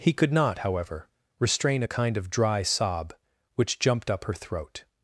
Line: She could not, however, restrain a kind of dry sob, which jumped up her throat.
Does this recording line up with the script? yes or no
no